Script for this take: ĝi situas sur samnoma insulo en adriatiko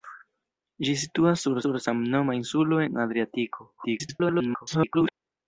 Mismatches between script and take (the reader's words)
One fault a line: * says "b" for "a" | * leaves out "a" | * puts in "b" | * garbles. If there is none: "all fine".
* puts in "sur"
* garbles